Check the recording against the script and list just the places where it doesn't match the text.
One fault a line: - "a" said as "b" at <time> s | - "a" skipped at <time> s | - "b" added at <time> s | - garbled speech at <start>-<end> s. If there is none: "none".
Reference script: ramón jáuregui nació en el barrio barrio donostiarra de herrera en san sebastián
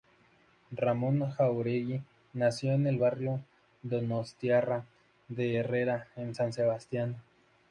- "barrio" skipped at 3.4 s